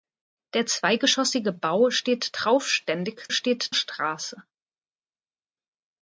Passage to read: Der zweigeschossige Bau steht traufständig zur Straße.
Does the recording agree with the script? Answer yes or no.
no